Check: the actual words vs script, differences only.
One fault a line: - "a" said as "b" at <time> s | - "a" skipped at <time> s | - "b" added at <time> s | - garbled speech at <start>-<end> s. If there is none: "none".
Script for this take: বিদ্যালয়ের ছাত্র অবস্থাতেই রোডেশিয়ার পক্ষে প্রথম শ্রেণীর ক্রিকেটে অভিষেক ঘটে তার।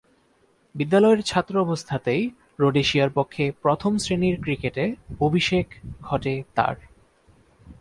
none